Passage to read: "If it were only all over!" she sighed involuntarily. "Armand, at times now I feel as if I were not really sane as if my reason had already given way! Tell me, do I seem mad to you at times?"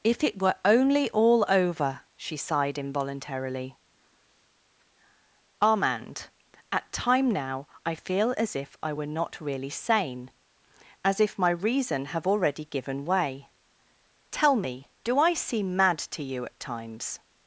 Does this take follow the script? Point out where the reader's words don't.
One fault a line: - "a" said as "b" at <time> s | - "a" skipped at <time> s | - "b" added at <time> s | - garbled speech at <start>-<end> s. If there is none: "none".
- "times" said as "time" at 6.9 s
- "had" said as "have" at 12.1 s